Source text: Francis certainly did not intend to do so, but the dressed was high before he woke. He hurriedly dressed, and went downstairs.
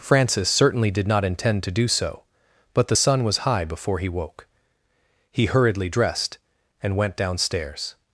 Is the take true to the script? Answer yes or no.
no